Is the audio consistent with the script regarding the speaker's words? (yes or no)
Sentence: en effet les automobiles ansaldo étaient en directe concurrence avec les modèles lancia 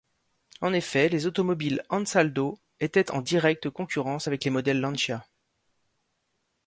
yes